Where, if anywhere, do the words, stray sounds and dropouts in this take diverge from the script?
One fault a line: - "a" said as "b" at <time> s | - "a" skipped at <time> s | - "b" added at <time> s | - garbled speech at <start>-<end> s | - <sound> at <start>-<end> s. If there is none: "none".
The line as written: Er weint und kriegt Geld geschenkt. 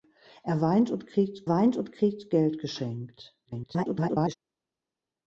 - "weint und kriegt" added at 1.5 s
- garbled speech at 3.4-4.3 s